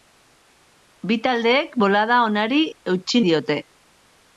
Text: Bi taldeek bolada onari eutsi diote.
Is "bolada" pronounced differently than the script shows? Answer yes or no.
no